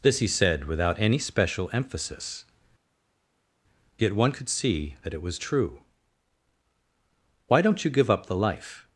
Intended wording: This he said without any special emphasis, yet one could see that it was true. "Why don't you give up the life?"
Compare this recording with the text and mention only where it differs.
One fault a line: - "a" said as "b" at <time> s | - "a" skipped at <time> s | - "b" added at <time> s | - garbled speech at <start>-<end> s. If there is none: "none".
none